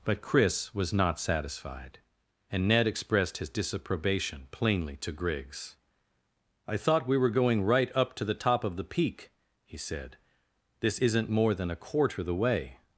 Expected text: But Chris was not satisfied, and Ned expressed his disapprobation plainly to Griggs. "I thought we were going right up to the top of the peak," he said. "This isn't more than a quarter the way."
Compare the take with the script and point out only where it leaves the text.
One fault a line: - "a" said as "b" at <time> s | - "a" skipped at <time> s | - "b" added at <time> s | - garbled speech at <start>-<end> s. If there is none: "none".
none